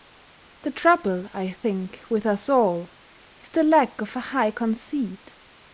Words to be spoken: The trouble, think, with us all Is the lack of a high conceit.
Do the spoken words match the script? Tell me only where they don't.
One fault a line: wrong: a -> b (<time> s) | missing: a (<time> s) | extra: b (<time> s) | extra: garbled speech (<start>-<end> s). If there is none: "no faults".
extra: I (1.3 s)